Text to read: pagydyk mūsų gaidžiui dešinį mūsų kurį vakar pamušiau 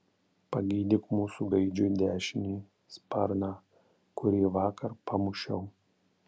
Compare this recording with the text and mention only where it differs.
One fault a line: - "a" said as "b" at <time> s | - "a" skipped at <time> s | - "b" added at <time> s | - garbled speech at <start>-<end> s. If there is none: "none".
- "mūsų" said as "sparną" at 3.0 s